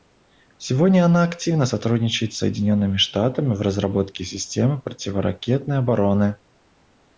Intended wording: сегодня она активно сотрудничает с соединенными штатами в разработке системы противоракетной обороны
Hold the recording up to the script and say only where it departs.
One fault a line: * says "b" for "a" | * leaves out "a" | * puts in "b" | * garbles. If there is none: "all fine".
all fine